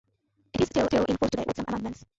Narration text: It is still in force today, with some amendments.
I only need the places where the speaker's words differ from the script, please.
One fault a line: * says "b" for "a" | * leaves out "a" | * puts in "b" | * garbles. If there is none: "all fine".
* puts in "still"